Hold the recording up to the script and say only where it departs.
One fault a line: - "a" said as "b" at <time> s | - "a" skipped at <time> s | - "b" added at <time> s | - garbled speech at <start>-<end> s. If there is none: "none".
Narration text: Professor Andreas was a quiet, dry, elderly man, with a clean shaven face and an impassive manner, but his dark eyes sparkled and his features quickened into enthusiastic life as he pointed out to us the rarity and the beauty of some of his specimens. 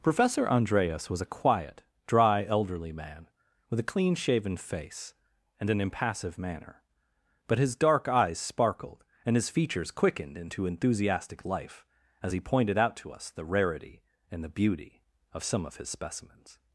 none